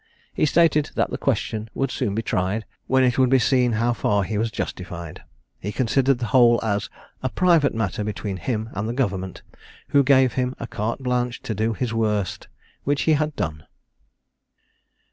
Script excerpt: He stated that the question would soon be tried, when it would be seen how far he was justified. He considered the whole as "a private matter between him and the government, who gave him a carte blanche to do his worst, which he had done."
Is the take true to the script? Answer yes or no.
yes